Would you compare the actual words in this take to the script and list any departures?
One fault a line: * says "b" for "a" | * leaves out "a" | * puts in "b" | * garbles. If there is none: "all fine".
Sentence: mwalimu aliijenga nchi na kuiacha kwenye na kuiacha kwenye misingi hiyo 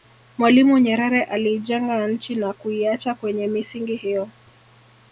* puts in "nyerere"
* leaves out "na kuiacha kwenye"